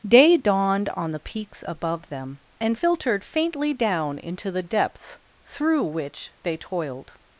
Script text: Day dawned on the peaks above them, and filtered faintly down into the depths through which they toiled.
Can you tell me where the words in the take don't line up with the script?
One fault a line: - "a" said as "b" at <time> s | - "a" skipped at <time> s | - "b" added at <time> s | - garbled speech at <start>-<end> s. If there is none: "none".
none